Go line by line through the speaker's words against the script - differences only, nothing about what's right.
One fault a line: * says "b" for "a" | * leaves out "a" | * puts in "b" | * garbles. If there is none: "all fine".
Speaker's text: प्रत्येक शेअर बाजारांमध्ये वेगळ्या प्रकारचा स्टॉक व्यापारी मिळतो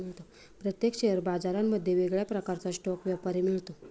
all fine